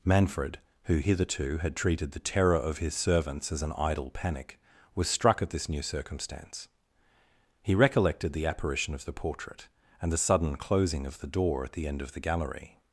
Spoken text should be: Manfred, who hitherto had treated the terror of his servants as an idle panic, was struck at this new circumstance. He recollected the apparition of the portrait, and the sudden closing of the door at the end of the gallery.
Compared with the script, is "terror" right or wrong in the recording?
right